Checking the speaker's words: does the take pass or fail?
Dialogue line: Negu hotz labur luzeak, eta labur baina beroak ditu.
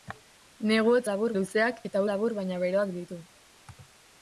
pass